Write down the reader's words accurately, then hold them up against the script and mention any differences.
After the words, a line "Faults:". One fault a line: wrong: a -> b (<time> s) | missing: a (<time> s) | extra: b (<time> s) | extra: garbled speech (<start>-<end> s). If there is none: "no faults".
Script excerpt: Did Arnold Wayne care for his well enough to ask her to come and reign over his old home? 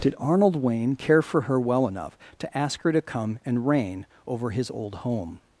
Did Arnold Wayne care for her well enough to ask her to come and reign over his old home?
Faults:
wrong: his -> her (1.4 s)